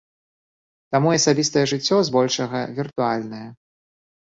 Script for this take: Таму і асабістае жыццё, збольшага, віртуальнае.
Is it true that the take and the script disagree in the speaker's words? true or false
false